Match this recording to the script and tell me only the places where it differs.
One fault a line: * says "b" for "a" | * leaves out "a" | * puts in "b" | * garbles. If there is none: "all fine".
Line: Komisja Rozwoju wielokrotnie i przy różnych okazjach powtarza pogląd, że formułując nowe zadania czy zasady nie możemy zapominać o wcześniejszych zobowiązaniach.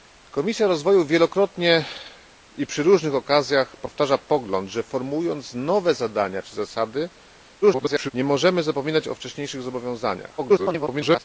* garbles
* garbles